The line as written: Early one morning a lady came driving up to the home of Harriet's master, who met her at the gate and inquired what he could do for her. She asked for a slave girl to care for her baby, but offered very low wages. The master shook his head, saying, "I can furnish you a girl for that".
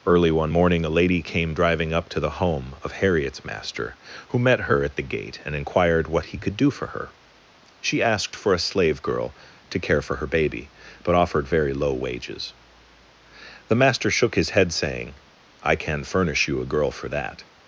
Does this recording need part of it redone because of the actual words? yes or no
no